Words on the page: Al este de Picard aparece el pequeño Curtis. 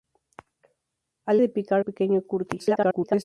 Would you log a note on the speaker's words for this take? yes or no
yes